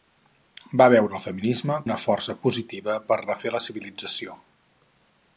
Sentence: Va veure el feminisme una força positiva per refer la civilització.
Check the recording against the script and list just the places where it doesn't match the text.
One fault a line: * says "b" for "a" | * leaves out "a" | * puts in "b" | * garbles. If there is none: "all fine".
all fine